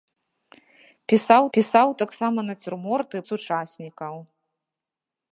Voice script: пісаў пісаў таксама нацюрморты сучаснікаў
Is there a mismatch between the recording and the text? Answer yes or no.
no